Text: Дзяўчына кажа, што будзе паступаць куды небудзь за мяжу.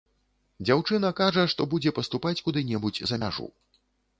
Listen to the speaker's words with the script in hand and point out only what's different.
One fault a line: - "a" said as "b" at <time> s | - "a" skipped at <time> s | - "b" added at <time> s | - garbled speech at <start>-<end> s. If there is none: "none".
none